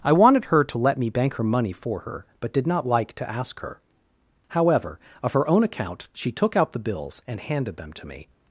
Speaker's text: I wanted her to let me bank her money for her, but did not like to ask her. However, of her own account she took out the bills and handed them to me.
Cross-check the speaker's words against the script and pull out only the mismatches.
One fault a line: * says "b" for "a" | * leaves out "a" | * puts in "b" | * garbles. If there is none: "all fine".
all fine